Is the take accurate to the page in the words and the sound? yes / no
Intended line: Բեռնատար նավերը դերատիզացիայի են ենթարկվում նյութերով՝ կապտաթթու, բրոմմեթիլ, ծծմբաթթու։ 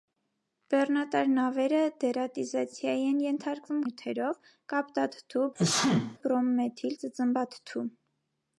no